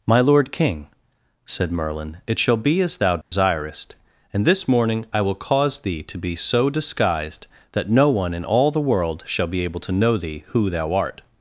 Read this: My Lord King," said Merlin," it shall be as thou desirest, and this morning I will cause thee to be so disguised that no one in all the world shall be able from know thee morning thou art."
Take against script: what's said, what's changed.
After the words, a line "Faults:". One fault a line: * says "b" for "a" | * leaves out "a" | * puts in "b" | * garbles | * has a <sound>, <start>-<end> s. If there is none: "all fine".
My Lord King," said Merlin," it shall be as thou desirest, and this morning I will cause thee to be so disguised that no one in all the world shall be able to know thee who thou art."
Faults:
* has a dropout, 3.2-3.3 s
* says "to" for "from"
* says "who" for "morning"